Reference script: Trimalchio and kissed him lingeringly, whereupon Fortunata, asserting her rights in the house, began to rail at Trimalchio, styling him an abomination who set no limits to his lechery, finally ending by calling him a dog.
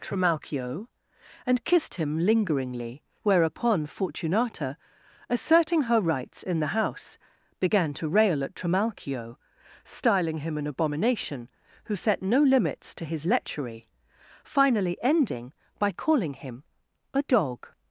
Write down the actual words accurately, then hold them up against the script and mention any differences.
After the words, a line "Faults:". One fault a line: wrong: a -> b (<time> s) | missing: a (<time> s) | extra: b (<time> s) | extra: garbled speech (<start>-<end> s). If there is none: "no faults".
Trimalchio and kissed him lingeringly, whereupon Fortunata, asserting her rights in the house, began to rail at Trimalchio, styling him an abomination who set no limits to his lechery, finally ending by calling him a dog.
Faults:
no faults